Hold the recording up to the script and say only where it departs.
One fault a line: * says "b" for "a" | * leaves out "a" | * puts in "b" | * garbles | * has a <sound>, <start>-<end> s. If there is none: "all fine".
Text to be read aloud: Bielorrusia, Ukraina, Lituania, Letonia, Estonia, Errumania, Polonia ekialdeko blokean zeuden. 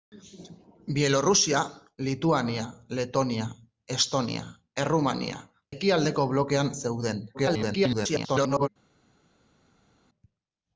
* leaves out "Ukraina"
* leaves out "Polonia"
* garbles